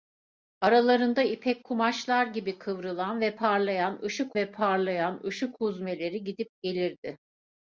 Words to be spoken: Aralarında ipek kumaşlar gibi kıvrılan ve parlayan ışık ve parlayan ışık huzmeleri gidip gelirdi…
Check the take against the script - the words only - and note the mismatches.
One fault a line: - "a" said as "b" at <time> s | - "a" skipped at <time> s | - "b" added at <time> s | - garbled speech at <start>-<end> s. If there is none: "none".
none